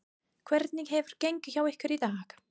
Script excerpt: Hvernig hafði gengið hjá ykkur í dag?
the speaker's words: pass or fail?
fail